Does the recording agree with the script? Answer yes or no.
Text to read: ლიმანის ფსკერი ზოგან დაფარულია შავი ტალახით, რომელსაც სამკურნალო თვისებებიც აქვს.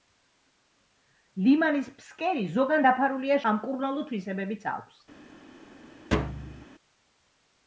no